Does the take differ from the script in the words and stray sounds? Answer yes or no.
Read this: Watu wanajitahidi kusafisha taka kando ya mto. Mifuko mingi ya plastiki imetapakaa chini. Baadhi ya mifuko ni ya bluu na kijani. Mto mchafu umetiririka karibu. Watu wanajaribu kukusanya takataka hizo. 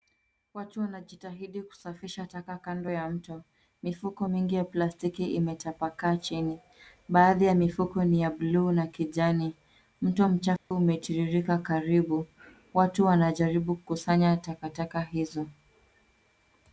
yes